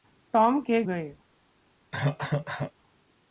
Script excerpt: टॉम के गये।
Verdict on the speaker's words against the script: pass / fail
pass